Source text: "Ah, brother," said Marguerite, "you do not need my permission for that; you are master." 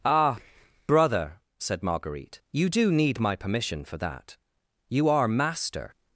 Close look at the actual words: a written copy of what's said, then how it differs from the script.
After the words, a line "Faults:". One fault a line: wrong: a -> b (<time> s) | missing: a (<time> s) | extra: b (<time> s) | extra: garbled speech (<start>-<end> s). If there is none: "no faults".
"Ah, brother," said Marguerite, "you do need my permission for that; you are master."
Faults:
missing: not (2.9 s)